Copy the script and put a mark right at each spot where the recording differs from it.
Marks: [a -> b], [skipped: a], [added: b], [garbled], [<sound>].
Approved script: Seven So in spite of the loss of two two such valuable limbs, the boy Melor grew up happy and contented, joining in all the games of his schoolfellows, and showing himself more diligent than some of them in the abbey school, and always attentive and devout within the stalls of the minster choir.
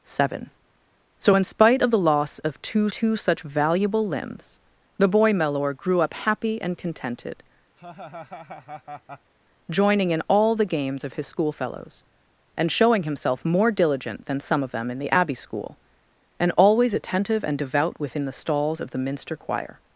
Seven So in spite of the loss of two two such valuable limbs, the boy Melor grew up happy and contented, [laugh] joining in all the games of his schoolfellows, and showing himself more diligent than some of them in the abbey school, and always attentive and devout within the stalls of the minster choir.